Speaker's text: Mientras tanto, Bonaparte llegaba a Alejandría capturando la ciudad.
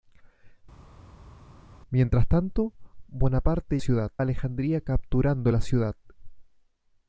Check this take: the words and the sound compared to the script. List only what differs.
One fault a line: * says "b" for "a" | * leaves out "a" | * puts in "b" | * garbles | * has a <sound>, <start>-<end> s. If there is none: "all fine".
* says "ciudad" for "llegaba"